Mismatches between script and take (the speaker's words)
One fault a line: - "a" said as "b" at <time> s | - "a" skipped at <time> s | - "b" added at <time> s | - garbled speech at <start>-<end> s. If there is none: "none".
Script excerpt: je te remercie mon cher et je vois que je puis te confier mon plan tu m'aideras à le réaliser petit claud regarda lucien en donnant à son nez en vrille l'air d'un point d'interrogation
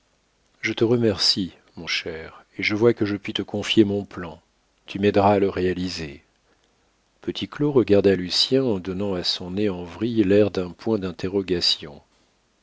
none